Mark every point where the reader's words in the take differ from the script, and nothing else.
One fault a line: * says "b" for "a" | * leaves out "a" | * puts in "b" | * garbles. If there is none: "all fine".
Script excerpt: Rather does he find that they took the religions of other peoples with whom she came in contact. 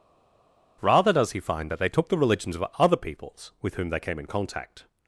* says "they" for "she"